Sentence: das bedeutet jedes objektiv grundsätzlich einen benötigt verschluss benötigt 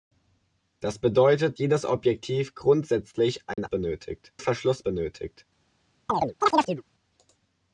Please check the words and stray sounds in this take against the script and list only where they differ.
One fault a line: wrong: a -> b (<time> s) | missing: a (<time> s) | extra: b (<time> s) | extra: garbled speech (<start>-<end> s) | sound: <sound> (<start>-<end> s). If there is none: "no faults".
sound: dropout (3.5-3.6 s)
sound: chirp (6.1-6.8 s)